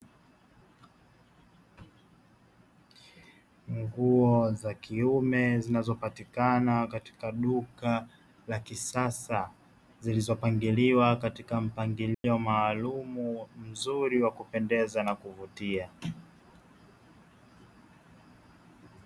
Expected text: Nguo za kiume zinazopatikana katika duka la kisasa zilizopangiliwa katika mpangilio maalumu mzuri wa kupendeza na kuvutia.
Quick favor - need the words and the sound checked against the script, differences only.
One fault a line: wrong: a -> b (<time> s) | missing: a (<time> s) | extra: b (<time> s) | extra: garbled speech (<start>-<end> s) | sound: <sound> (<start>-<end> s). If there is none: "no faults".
sound: dropout (12.1-12.2 s)